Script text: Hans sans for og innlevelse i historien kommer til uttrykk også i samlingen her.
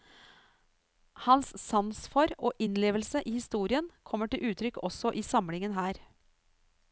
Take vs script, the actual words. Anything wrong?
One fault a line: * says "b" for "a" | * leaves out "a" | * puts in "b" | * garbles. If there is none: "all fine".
all fine